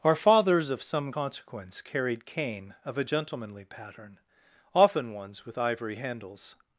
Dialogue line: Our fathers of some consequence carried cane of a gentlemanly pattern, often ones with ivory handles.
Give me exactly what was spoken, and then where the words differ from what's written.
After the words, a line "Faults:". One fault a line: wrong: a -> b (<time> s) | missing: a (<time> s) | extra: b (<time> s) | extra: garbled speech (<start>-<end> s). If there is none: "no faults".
Our fathers of some consequence carried cane of a gentlemanly pattern, often ones with ivory handles.
Faults:
no faults